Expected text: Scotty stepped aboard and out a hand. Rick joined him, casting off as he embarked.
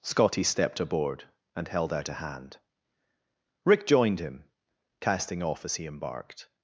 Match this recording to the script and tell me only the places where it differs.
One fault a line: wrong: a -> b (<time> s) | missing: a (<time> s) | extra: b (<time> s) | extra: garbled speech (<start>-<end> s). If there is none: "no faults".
extra: held (1.7 s)